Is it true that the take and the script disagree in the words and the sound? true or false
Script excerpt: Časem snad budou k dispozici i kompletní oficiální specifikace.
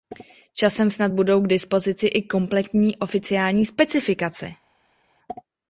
false